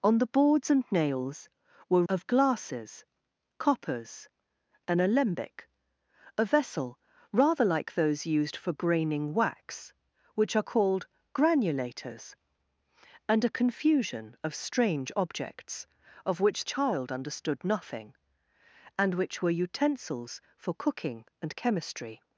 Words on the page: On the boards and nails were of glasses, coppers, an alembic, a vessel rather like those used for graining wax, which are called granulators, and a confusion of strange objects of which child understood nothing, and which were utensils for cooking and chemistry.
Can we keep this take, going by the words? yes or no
yes